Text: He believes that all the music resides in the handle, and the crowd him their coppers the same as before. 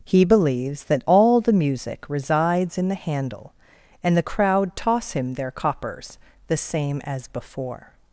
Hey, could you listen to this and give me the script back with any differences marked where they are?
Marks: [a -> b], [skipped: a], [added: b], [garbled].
He believes that all the music resides in the handle, and the crowd [added: toss] him their coppers the same as before.